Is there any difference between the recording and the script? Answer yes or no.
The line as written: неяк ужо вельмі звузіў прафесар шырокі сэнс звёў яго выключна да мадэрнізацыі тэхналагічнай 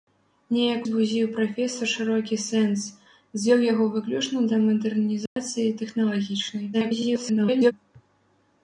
yes